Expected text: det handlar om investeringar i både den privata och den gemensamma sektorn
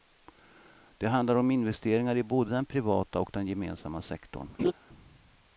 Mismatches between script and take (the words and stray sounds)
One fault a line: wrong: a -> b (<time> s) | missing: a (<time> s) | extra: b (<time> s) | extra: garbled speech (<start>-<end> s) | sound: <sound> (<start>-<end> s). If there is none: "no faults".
sound: laugh (4.6-4.7 s)